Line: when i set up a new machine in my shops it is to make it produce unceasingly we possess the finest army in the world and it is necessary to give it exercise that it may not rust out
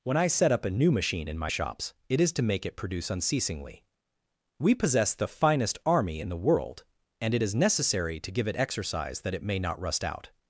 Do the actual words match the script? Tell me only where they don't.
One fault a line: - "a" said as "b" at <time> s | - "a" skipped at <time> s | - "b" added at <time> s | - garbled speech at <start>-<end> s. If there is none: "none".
none